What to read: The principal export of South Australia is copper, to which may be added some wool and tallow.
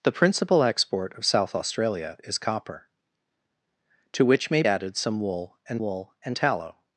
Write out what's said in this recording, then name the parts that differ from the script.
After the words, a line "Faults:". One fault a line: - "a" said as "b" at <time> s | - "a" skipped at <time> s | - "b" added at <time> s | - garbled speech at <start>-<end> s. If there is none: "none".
The principal export of South Australia is copper, to which may added some wool and wool and tallow.
Faults:
- "be" skipped at 4.6 s
- "wool and" added at 5.8 s